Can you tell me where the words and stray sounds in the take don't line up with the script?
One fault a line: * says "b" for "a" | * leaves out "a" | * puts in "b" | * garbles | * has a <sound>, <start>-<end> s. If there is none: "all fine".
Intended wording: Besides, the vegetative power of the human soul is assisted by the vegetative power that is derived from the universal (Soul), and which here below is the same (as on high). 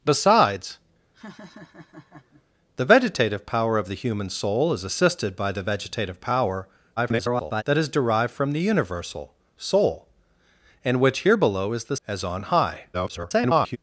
* has a laugh, 1.1-2.4 s
* garbles
* leaves out "same"
* garbles